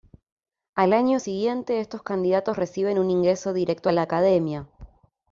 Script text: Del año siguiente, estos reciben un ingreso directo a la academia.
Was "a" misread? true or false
false